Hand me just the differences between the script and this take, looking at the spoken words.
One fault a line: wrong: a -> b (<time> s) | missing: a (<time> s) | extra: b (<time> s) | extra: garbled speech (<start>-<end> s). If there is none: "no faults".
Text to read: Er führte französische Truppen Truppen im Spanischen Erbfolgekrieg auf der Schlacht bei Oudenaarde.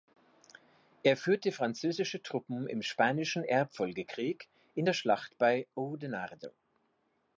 missing: Truppen (2.7 s)
wrong: auf -> in (4.7 s)